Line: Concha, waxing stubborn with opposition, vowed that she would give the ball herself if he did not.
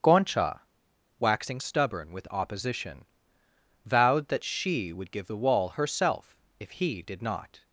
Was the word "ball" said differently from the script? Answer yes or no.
yes